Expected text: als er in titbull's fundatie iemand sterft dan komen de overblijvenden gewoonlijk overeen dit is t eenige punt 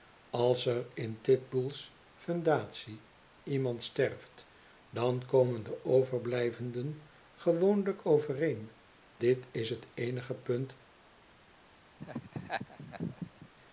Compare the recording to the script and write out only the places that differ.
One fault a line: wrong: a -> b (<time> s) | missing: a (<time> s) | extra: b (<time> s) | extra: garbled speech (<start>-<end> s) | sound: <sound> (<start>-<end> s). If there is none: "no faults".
sound: laugh (12.0-13.5 s)